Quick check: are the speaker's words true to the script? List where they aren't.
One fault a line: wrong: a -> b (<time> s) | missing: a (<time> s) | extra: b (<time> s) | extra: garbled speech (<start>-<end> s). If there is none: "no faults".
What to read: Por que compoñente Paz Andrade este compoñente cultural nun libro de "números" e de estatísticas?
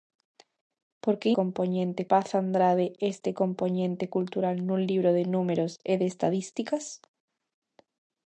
no faults